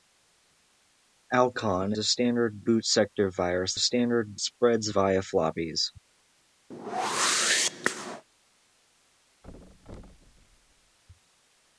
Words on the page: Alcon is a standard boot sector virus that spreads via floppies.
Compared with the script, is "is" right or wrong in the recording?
wrong